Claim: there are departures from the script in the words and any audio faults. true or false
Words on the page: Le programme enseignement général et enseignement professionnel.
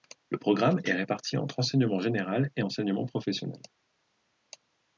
true